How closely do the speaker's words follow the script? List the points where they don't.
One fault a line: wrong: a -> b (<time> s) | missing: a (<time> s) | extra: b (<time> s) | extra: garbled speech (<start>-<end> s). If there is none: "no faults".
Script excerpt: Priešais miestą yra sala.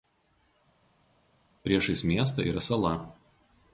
no faults